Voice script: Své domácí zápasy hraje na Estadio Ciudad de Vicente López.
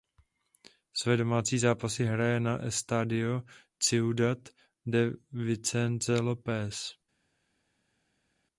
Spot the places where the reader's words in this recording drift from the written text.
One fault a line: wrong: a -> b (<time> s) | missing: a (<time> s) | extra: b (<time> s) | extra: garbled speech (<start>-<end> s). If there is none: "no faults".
no faults